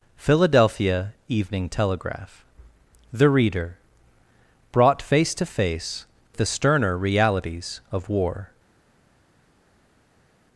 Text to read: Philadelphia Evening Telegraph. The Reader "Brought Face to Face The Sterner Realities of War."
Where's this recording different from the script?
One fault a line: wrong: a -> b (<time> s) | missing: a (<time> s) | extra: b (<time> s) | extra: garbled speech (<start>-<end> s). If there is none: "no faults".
no faults